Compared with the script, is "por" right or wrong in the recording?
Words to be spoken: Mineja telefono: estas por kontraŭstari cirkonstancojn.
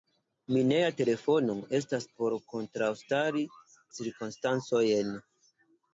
right